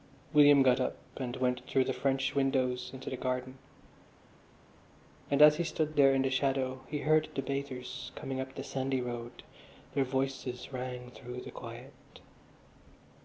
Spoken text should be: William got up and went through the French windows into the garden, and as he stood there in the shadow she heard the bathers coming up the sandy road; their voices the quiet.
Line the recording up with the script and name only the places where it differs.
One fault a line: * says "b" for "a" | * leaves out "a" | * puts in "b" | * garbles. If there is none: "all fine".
* says "he" for "she"
* puts in "rang through"